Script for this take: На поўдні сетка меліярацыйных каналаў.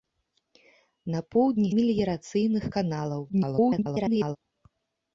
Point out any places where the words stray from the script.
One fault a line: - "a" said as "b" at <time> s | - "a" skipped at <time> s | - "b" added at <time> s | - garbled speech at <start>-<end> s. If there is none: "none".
- "сетка" skipped at 1.7 s
- garbled speech at 3.3-4.4 s